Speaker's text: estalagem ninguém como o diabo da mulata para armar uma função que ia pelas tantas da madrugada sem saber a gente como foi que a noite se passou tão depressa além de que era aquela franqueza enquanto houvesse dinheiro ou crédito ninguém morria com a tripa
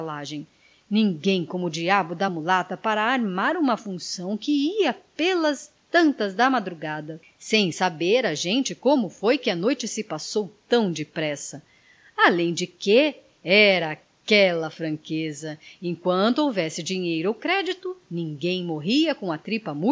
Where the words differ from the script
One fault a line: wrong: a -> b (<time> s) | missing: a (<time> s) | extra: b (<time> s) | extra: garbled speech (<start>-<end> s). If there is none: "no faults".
no faults